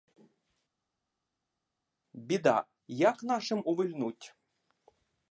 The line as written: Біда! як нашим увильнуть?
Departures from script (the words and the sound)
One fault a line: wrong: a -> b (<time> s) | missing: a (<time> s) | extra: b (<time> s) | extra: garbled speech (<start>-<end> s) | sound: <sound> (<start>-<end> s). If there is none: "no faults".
no faults